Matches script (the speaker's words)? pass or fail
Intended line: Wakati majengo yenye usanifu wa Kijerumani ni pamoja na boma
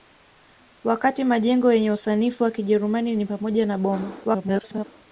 fail